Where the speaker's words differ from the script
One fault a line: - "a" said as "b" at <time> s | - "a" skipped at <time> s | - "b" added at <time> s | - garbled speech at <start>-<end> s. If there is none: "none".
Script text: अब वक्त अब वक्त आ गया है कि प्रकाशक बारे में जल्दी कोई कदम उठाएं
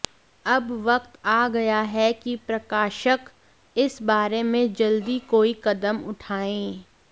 - "अब वक्त" skipped at 1.2 s
- "इस" added at 3.8 s